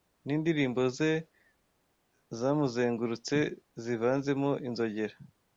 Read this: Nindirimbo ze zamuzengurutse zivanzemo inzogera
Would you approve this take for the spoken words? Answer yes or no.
yes